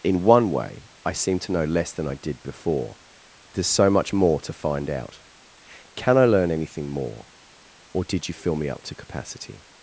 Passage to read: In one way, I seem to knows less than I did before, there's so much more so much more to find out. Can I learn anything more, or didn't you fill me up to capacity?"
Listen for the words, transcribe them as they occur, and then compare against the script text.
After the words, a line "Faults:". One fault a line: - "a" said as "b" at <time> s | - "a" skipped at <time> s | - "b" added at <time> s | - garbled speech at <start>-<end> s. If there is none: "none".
In one way, I seem to know less than I did before, there's so much more to find out. Can I learn anything more, or did you fill me up to capacity?"
Faults:
- "knows" said as "know" at 1.5 s
- "so much more" skipped at 4.4 s
- "didn't" said as "did" at 8.0 s